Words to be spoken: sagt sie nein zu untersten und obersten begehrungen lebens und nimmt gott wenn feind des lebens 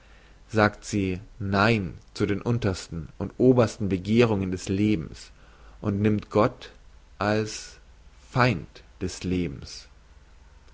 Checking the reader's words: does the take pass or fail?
fail